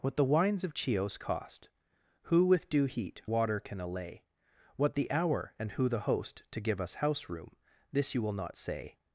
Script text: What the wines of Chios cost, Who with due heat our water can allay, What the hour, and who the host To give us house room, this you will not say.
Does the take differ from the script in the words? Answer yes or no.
yes